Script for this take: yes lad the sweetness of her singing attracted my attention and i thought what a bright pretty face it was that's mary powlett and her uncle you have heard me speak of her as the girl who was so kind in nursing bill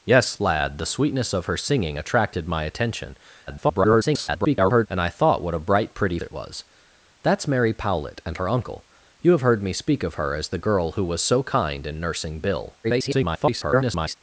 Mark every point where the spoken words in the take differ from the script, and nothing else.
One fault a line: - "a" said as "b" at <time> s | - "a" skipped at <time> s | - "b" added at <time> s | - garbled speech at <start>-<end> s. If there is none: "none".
- garbled speech at 3.5-4.9 s
- "face" skipped at 6.2 s
- garbled speech at 12.8-14.2 s